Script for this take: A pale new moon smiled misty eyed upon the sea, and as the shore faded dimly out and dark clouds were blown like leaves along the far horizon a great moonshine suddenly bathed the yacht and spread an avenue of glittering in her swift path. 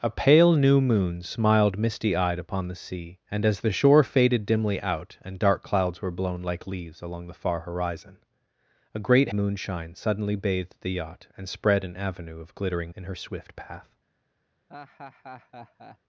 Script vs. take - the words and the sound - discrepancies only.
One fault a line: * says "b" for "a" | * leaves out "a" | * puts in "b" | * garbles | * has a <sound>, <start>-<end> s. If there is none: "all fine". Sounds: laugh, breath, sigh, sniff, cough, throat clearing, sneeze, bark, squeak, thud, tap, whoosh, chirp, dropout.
* has a laugh, 14.7-16.0 s